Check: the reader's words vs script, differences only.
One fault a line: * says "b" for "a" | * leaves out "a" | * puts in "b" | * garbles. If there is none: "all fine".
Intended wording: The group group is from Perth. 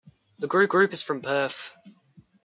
all fine